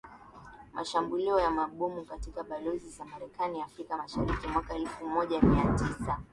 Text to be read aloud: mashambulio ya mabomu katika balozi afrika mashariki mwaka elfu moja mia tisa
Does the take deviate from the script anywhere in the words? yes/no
yes